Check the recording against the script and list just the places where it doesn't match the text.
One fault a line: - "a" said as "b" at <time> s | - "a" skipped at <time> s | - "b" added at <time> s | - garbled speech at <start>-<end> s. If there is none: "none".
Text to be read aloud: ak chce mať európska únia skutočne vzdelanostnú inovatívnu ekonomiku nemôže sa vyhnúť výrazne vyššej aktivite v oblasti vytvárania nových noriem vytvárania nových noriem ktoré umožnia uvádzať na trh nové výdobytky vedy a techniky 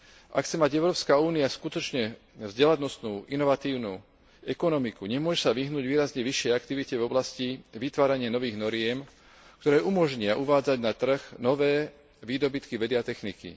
- "vytvárania nových noriem" skipped at 9.0 s